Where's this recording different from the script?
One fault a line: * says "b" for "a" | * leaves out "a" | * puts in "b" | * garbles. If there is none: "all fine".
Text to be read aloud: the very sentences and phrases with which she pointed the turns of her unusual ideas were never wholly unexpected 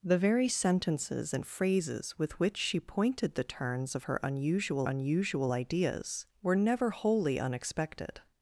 * puts in "unusual"